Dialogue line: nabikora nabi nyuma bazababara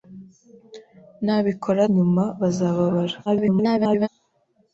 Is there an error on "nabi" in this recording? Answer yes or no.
yes